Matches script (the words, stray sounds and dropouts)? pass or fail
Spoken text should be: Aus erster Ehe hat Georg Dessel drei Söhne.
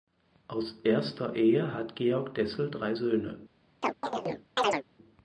fail